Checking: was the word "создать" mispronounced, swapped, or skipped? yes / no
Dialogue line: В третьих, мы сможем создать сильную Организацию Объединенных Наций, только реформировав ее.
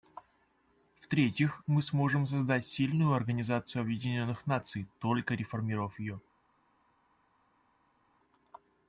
no